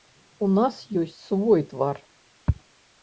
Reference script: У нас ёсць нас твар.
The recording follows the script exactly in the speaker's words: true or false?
false